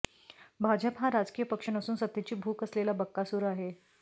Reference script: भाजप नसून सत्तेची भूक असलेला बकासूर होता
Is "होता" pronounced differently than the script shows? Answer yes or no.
yes